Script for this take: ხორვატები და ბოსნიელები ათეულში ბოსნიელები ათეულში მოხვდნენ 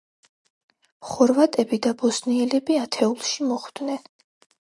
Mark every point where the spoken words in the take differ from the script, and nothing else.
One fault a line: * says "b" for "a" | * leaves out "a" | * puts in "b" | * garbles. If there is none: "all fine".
* leaves out "ბოსნიელები ათეულში"